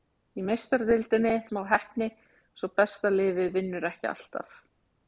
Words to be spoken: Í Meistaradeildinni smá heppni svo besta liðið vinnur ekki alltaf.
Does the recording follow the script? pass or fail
pass